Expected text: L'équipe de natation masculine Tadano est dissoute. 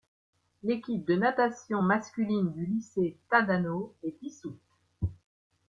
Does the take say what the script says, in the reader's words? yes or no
no